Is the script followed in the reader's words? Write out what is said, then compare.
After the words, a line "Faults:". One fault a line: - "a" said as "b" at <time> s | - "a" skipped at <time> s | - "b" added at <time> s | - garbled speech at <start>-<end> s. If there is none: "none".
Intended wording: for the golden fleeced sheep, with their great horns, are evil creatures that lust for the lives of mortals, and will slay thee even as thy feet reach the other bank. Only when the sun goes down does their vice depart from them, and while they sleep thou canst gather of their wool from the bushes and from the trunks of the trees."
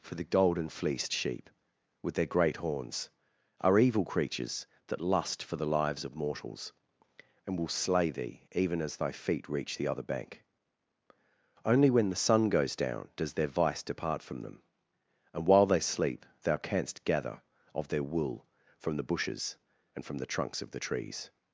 for the golden fleeced sheep, with their great horns, are evil creatures that lust for the lives of mortals, and will slay thee even as thy feet reach the other bank. Only when the sun goes down does their vice depart from them, and while they sleep thou canst gather of their wool from the bushes and from the trunks of the trees."
Faults:
none